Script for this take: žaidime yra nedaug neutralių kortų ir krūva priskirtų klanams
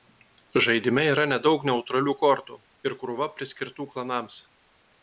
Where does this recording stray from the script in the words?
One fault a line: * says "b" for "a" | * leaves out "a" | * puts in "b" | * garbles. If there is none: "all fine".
all fine